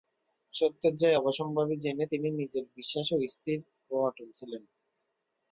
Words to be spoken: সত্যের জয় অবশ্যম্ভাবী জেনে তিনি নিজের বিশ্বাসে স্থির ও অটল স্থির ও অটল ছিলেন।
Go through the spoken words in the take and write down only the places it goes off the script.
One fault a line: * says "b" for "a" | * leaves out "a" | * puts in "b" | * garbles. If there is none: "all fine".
* leaves out "স্থির ও অটল"